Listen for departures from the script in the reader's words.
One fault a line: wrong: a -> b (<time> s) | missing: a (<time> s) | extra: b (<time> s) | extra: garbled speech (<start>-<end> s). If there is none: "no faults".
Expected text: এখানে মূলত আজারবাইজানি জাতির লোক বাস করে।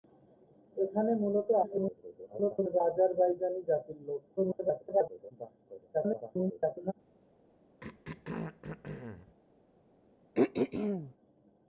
extra: garbled speech (1.6-2.8 s)
extra: garbled speech (4.4-5.3 s)
extra: garbled speech (5.9-6.9 s)